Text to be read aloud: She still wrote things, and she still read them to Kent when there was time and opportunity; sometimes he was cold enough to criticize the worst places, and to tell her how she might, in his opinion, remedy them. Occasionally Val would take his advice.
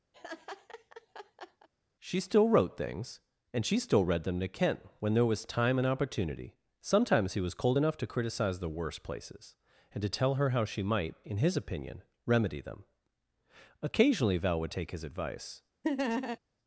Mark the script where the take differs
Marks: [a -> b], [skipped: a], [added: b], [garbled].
She still wrote things, and she still read them to Kent when there was time and opportunity; sometimes he was cold enough to criticize the worst places, and to tell her how she might, in his opinion, remedy them. Occasionally Val would take his advice.